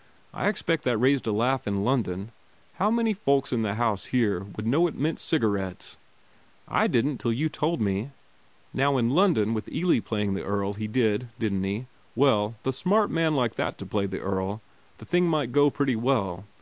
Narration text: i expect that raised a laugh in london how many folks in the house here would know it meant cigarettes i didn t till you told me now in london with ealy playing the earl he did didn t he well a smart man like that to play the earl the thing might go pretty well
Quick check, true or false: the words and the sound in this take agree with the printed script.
true